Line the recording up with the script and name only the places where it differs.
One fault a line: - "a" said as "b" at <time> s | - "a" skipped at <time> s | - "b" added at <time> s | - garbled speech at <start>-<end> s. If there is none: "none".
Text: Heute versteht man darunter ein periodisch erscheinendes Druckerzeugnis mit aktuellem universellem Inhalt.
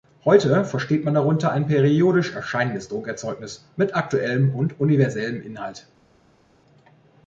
- "und" added at 4.5 s